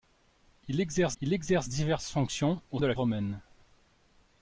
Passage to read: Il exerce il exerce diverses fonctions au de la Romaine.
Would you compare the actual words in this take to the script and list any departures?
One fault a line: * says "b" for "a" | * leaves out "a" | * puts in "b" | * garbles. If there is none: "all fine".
all fine